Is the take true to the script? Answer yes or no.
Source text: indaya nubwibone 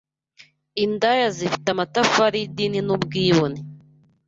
no